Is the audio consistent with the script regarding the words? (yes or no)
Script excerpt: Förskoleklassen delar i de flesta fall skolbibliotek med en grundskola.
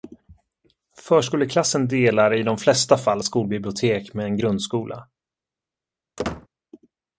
yes